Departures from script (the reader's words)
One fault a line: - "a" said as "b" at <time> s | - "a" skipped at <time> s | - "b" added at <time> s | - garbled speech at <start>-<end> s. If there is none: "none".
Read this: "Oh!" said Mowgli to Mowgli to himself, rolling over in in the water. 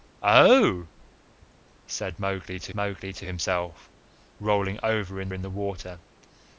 none